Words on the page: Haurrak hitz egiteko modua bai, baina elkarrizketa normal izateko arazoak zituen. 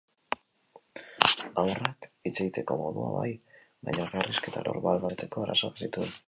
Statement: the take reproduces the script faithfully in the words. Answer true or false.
true